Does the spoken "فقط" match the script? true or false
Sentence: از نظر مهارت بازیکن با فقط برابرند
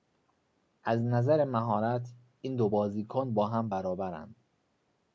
false